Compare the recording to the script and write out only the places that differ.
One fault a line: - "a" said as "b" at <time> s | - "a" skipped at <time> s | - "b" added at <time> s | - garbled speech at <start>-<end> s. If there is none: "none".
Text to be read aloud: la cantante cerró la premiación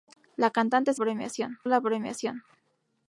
- "cerró" said as "premiación" at 1.0 s